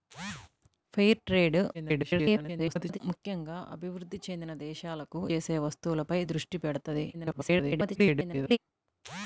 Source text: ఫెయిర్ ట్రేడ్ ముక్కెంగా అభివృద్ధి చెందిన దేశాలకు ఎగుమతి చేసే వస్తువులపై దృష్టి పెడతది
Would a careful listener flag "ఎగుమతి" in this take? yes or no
yes